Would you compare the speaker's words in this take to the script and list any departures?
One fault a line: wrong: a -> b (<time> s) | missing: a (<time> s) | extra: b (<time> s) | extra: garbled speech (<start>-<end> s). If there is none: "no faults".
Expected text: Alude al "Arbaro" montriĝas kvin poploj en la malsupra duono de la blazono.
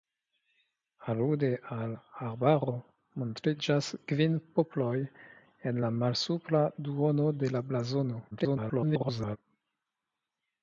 extra: garbled speech (8.3-9.4 s)